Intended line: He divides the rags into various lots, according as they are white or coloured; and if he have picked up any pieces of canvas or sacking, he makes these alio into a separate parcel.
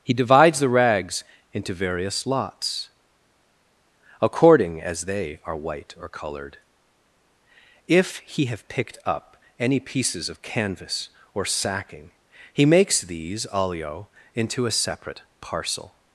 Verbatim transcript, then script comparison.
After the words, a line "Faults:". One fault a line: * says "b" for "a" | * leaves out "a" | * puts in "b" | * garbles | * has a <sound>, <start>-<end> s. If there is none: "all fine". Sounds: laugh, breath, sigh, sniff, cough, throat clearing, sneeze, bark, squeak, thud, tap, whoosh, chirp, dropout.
He divides the rags into various lots, according as they are white or colored if he have picked up any pieces of canvas or sacking, he makes these alio into a separate parcel.
Faults:
* says "colored" for "coloured and"